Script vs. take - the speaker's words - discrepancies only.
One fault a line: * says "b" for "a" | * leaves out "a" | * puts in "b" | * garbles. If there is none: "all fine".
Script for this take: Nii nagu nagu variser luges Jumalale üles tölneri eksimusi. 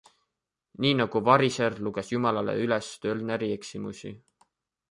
* leaves out "nagu"